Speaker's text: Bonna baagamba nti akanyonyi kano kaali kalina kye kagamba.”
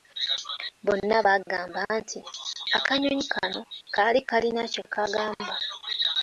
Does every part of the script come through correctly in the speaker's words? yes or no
yes